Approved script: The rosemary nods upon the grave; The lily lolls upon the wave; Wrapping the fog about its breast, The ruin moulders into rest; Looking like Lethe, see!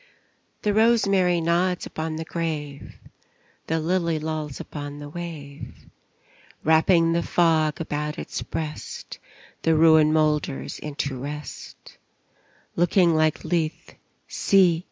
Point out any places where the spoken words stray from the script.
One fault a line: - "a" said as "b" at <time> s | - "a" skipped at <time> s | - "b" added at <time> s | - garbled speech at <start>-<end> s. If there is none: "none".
none